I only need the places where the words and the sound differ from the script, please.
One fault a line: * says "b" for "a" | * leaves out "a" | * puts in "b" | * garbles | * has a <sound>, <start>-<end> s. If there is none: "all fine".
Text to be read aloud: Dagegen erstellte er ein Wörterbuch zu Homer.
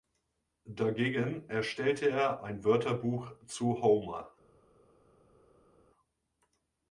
all fine